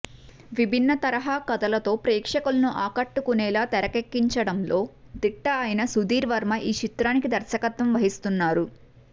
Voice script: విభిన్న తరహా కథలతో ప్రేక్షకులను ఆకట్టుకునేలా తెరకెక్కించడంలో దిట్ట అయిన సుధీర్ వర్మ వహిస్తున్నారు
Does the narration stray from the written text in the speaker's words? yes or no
yes